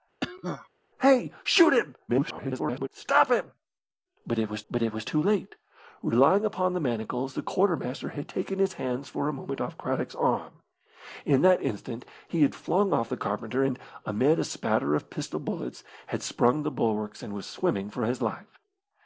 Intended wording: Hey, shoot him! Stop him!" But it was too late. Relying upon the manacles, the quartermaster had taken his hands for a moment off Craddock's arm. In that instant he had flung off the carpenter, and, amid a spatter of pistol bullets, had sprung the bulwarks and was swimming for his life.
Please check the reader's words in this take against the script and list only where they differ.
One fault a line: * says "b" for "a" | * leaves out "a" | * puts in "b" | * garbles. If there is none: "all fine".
* garbles
* puts in "but it was"